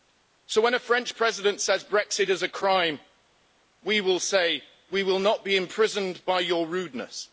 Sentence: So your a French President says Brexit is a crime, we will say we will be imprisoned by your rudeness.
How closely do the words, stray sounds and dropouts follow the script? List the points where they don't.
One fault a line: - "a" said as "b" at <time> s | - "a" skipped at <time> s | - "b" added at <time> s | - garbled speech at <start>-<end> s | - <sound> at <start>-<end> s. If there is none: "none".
- "your" said as "when" at 0.6 s
- "not" added at 5.2 s